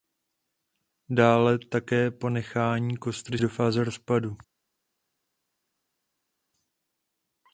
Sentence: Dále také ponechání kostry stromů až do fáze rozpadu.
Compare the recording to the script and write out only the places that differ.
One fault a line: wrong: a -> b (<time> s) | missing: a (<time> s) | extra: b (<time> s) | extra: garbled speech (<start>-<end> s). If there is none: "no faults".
missing: stromů až (3.4 s)